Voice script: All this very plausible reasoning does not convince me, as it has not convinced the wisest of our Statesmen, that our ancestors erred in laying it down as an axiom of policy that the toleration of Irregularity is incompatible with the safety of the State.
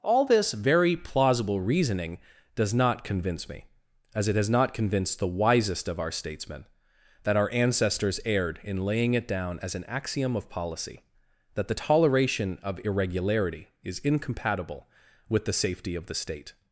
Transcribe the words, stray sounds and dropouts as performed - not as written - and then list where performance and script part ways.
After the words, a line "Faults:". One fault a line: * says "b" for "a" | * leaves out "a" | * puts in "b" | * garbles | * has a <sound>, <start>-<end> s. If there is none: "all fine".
All this very plausible reasoning does not convince me, as it has not convinced the wisest of our Statesmen, that our ancestors erred in laying it down as an axiom of policy that the toleration of Irregularity is incompatible with the safety of the State.
Faults:
all fine